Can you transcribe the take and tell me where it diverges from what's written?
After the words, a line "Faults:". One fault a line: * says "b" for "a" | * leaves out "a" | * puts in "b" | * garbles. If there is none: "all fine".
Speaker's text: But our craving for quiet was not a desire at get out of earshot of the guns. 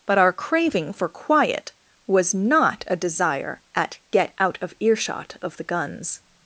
But our craving for quiet was not a desire at get out of earshot of the guns.
Faults:
all fine